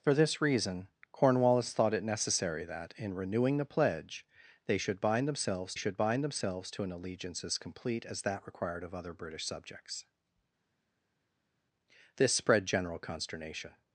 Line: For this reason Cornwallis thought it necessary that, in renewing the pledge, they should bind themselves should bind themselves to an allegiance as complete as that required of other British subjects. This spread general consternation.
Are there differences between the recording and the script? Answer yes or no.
no